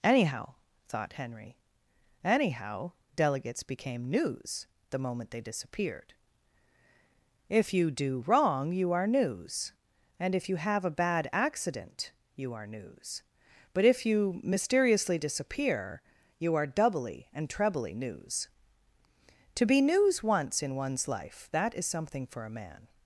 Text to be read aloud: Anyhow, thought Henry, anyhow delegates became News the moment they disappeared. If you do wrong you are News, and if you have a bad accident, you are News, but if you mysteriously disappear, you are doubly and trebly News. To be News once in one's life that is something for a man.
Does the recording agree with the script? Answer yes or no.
yes